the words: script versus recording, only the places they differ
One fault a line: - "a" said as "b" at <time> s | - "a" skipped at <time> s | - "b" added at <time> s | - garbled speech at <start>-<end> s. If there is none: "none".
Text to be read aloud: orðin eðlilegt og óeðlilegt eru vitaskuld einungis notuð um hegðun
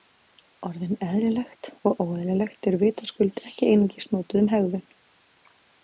- "ekki" added at 3.5 s